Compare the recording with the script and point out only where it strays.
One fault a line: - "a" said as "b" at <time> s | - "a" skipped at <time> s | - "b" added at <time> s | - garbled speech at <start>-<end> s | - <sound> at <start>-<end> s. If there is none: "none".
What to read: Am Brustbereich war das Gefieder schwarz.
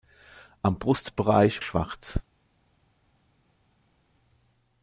- "war das Gefieder" skipped at 1.6 s